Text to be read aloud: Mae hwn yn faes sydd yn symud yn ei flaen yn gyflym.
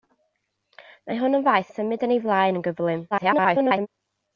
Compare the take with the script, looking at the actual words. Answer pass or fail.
fail